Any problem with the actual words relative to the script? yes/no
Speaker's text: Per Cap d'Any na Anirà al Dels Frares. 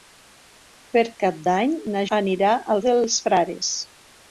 no